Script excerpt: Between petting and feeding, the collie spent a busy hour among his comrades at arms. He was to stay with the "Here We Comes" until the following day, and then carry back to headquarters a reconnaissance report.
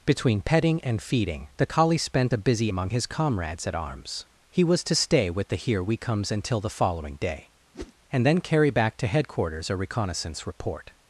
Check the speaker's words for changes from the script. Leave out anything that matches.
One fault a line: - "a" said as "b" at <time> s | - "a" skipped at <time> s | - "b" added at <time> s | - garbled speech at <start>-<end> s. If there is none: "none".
- "hour" skipped at 2.7 s